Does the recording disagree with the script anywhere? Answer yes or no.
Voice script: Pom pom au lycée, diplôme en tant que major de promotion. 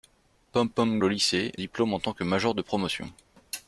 no